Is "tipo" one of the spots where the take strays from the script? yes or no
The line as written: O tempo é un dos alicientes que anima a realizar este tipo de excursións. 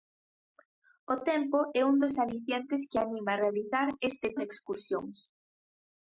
yes